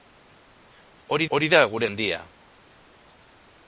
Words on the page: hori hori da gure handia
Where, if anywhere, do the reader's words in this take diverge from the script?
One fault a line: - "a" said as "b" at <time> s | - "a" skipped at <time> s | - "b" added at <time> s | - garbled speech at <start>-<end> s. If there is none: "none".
none